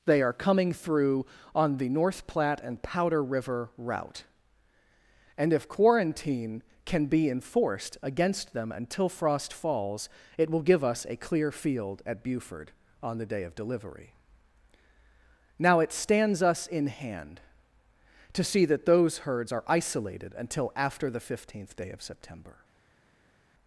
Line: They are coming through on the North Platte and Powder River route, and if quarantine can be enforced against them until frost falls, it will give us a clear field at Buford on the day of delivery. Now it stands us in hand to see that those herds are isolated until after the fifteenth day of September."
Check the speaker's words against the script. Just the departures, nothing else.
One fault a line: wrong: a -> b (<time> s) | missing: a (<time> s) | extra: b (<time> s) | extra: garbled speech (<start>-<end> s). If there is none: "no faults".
no faults